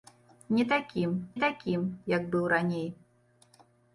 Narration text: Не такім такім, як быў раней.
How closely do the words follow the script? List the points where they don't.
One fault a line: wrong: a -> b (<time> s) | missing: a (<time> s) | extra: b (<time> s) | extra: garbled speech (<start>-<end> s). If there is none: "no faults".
no faults